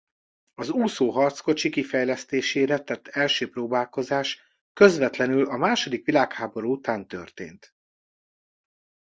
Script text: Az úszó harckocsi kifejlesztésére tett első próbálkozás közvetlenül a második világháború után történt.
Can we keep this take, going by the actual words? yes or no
yes